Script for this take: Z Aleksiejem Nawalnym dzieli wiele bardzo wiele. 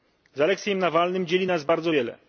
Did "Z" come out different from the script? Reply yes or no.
no